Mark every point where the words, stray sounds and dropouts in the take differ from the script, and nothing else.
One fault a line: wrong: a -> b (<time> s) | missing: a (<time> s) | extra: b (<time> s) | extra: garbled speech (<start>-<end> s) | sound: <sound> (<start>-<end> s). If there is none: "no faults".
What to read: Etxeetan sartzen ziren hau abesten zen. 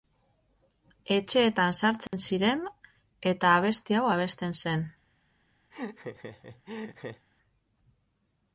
sound: dropout (2.1-2.1 s)
extra: eta abesti (3.3 s)
sound: laugh (5.7-7.3 s)